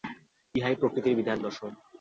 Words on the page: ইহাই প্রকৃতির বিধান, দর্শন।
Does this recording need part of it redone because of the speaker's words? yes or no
no